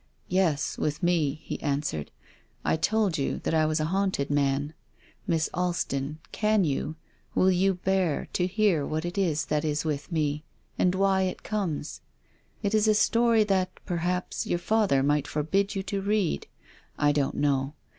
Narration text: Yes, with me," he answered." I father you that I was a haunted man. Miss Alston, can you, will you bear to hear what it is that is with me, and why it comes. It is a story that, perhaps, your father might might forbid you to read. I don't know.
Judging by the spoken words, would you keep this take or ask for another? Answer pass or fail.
fail